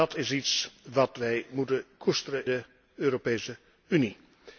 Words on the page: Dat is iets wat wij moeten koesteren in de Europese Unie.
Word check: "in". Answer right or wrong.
wrong